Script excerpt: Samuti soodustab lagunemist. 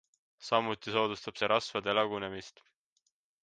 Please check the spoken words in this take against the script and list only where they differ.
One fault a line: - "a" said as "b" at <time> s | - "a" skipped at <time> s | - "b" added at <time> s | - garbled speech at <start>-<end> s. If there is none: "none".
- "see rasvade" added at 1.4 s